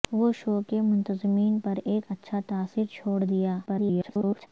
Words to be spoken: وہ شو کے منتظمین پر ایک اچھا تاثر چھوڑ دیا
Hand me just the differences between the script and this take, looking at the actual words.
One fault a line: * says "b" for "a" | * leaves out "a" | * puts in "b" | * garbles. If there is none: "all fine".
* garbles